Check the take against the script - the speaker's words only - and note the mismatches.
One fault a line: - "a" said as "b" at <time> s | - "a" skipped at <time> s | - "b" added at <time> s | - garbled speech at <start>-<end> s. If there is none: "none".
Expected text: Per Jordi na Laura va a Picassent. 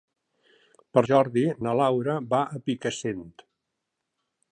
none